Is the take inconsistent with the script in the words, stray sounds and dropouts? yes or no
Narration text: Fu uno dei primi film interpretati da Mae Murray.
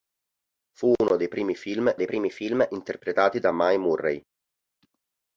yes